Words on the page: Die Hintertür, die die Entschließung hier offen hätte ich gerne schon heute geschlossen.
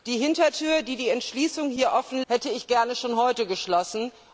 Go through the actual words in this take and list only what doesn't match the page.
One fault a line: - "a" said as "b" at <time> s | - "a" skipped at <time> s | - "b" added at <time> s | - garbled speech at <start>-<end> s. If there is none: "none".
none